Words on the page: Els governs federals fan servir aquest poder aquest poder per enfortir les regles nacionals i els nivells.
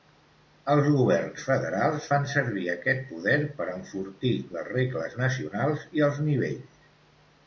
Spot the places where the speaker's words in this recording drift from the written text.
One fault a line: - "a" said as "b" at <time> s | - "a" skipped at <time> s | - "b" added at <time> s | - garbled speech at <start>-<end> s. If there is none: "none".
- "aquest poder" skipped at 3.4 s